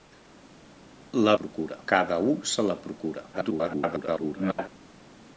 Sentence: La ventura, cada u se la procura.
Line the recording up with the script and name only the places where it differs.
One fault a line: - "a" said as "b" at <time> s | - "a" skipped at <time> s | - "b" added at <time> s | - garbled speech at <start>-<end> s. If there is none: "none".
- "ventura" said as "procura" at 1.4 s
- garbled speech at 3.3-4.7 s